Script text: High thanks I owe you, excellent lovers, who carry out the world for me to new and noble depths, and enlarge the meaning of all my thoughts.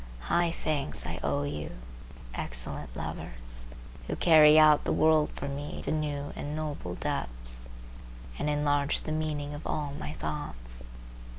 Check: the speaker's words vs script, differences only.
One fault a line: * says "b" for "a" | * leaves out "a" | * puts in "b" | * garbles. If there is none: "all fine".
all fine